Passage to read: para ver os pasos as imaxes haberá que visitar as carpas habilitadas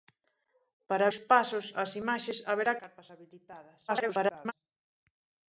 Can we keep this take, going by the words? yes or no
no